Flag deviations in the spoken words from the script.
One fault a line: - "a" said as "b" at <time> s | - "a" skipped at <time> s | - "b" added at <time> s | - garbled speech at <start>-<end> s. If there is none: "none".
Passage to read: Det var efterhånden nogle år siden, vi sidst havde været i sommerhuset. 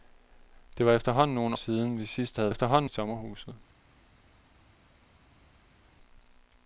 - "år" skipped at 1.6 s
- "været" said as "efterhånden" at 2.5 s